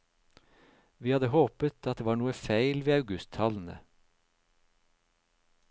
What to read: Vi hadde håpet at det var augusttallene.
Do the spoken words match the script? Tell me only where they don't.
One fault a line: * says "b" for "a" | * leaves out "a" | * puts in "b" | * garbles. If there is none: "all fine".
* puts in "noe feil ved"